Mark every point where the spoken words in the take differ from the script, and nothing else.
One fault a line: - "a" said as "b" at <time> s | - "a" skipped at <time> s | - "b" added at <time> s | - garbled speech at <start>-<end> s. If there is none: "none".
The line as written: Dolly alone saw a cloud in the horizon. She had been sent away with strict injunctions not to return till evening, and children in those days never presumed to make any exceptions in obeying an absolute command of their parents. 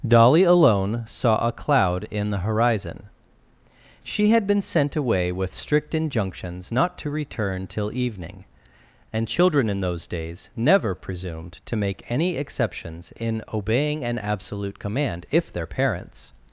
- "of" said as "if" at 15.3 s